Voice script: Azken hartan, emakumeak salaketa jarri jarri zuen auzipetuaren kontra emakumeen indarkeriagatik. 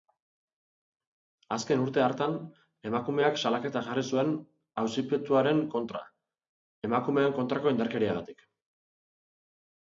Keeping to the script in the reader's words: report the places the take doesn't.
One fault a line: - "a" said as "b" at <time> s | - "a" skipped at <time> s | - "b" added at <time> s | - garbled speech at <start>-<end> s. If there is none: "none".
- "urte" added at 1.8 s
- "jarri" skipped at 4.0 s
- "kontrako" added at 7.4 s